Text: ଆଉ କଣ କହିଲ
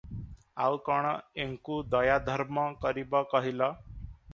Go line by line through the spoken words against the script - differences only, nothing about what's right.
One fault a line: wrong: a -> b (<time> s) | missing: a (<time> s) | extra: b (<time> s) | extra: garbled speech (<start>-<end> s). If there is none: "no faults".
extra: ଏଙ୍କୁ ଦୟାଧର୍ମ କରିବ (1.4 s)